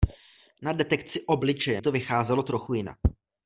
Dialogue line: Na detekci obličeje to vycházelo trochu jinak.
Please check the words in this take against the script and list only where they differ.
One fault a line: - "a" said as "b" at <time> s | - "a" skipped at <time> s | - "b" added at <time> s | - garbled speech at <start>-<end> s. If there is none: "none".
none